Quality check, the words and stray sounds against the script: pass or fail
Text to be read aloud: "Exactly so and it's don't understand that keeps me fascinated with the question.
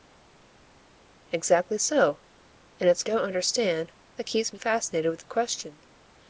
pass